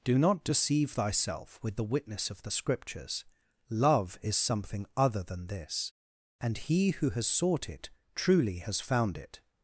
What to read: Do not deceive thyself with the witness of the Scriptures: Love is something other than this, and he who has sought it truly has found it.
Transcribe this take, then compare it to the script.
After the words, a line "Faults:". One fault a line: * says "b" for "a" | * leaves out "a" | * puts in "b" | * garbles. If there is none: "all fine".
Do not deceive thyself with the witness of the Scriptures: Love is something other than this, and he who has sought it truly has found it.
Faults:
all fine